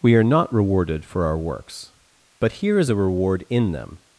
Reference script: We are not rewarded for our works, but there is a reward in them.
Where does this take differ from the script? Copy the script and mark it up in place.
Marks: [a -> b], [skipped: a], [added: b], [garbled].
We are not rewarded for our works, but [there -> here] is a reward in them.